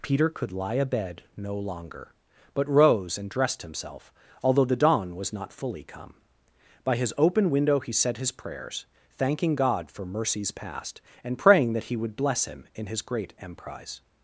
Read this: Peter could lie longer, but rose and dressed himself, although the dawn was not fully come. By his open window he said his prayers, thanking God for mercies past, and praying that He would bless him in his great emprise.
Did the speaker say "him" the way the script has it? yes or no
yes